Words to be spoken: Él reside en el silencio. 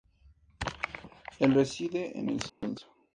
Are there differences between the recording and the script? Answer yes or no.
no